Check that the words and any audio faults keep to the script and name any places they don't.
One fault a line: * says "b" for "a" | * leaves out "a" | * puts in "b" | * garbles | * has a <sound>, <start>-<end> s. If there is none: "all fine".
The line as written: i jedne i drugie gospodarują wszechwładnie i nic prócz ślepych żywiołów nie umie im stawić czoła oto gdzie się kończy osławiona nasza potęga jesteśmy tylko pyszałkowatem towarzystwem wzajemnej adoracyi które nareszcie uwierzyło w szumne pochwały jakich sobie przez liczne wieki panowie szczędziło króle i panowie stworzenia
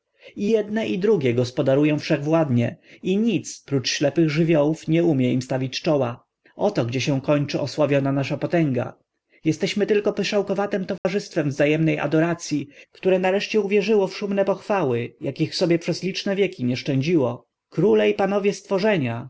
* has a dropout, 11.0-11.0 s
* says "nie" for "panowie"